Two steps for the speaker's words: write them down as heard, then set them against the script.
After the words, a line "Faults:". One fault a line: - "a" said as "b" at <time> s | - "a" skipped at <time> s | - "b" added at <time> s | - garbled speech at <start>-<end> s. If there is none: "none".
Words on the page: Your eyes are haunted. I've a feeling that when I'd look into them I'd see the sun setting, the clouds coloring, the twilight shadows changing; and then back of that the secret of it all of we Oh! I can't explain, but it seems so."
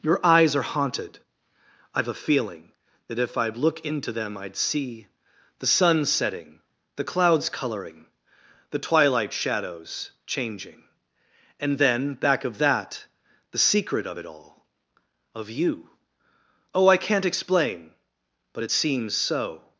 Your eyes are haunted. I've a feeling that if I'd look into them I'd see the sun setting, the clouds coloring, the twilight shadows changing; and then back of that the secret of it all of you Oh! I can't explain, but it seems so."
Faults:
- "when" said as "if" at 3.2 s
- "we" said as "you" at 15.5 s